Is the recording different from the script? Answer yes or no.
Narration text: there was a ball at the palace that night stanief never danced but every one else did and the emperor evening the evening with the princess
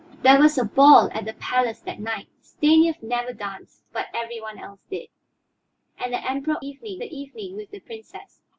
no